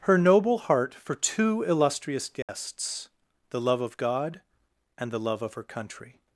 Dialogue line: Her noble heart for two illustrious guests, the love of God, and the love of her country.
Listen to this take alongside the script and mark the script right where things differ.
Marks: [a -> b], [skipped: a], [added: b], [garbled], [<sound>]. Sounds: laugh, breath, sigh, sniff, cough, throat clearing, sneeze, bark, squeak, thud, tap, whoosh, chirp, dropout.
Her noble heart for two illustrious guests, [dropout] the love of God, and the love of her country.